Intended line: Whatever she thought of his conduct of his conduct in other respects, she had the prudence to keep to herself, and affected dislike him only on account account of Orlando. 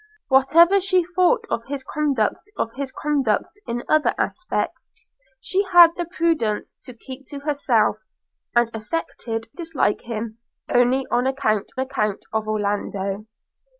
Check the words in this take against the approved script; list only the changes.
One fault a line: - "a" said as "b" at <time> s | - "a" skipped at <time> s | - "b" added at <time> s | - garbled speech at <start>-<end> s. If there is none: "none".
none